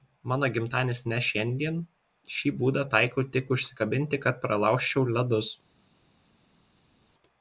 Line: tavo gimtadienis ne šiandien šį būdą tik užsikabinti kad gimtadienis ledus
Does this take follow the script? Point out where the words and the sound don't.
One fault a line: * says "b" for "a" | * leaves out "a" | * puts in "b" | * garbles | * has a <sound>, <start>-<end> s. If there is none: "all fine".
* says "mano" for "tavo"
* puts in "taikau"
* says "pralaužčiau" for "gimtadienis"